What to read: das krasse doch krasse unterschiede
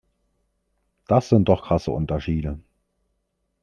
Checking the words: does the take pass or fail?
fail